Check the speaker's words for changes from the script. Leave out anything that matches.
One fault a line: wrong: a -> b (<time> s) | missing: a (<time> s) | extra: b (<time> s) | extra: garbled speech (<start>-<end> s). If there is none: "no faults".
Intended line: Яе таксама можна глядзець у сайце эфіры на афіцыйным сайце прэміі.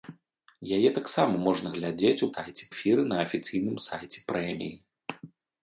no faults